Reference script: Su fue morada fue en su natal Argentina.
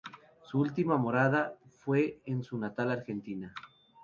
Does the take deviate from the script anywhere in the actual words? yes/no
yes